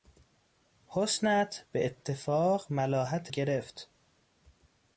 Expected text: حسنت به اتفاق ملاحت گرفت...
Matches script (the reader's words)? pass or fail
pass